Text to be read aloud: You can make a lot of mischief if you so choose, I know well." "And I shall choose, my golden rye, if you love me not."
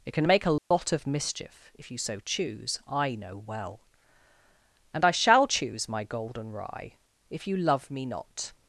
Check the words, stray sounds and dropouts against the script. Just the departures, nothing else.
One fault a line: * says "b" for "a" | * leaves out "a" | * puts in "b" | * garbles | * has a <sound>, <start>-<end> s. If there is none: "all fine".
* says "It" for "You"
* has a dropout, 0.6-0.7 s